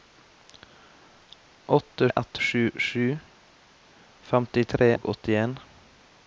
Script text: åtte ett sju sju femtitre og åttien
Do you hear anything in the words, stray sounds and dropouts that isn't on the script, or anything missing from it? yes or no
no